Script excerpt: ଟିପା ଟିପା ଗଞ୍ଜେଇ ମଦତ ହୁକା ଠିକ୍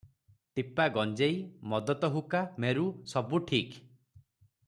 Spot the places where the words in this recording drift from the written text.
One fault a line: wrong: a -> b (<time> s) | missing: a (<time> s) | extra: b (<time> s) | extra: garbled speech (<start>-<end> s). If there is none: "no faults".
missing: ଟିପା (0.9 s)
extra: ମେରୁ ସବୁ (2.6 s)